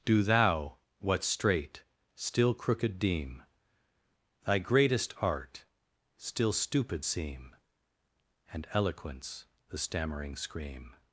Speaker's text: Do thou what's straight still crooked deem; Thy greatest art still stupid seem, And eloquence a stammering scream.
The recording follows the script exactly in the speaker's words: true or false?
false